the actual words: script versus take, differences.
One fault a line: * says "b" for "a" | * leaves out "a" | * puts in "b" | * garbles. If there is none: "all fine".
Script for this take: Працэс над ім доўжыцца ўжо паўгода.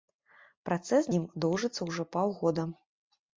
* leaves out "над"